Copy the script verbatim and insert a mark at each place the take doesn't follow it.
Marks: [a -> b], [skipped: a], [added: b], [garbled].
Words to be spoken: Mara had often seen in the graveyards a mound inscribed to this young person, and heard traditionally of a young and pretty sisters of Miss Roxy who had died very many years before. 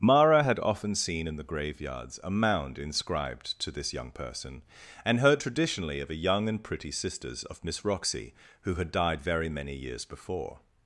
Mara had often seen in the graveyards a mound inscribed to this young person, and heard traditionally of a young and pretty sisters of Miss Roxy who had died very many years before.